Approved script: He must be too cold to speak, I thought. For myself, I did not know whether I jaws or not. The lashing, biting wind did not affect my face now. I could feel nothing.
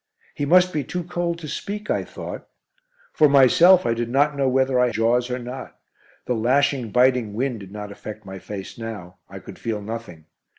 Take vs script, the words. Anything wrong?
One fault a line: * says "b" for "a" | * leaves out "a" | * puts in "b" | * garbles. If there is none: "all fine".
all fine